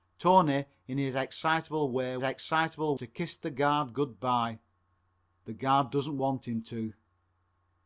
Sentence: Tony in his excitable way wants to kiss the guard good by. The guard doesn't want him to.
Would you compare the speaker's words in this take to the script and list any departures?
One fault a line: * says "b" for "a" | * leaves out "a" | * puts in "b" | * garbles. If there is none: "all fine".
* says "excitable" for "wants"